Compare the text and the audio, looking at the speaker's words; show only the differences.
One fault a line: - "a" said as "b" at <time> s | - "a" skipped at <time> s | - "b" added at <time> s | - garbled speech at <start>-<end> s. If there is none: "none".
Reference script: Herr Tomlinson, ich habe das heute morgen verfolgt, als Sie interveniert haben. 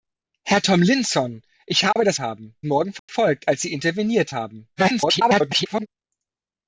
- "heute" said as "haben" at 2.2 s
- garbled speech at 4.8-5.9 s